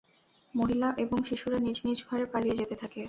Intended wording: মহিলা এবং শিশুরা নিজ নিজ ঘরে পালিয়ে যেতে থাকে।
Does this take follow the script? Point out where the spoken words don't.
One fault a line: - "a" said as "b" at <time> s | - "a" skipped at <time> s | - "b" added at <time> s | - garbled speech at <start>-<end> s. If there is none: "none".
none